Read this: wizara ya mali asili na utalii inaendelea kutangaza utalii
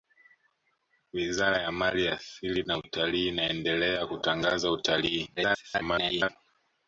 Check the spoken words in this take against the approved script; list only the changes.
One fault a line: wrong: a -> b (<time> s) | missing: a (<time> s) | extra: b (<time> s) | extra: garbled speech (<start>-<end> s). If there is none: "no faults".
extra: garbled speech (5.4-6.3 s)